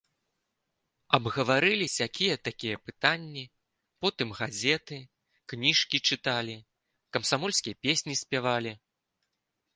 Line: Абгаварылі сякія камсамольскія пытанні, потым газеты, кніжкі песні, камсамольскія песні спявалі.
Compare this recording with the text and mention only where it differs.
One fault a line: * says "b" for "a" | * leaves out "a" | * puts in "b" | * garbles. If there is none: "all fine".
* says "такія" for "камсамольскія"
* says "чыталі" for "песні"